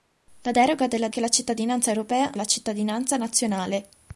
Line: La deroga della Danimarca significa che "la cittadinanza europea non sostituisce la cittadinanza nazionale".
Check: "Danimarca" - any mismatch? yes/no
yes